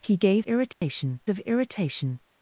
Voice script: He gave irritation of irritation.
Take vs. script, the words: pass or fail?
pass